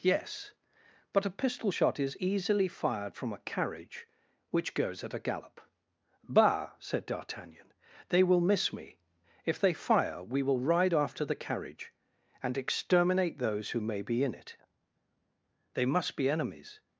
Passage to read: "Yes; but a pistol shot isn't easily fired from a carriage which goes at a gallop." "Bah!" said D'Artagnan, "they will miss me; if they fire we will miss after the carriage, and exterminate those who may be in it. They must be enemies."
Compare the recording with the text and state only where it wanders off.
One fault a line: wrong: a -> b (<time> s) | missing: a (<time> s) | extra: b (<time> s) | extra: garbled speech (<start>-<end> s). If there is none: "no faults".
wrong: isn't -> is (2.0 s)
wrong: miss -> ride (10.6 s)